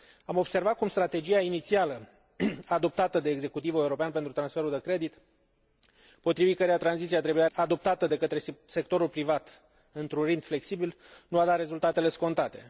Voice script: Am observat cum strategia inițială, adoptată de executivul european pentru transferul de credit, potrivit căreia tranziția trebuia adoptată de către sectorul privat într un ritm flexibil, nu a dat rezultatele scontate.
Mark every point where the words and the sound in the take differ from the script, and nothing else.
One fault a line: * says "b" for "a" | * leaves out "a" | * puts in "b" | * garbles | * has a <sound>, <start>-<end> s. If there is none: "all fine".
all fine